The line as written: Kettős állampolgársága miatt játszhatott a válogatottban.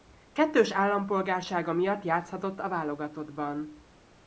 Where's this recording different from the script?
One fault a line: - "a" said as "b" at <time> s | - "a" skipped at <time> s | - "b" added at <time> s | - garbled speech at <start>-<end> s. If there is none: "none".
none